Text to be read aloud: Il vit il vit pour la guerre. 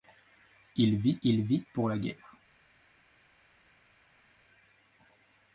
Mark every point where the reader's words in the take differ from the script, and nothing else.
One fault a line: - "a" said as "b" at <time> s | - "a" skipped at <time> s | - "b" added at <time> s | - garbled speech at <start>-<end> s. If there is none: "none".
none